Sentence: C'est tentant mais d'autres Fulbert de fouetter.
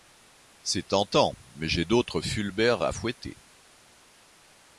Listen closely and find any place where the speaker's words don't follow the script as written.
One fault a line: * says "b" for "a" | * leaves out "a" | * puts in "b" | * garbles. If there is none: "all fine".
* puts in "j'ai"
* says "à" for "de"